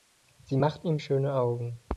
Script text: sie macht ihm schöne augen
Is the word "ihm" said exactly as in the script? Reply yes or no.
yes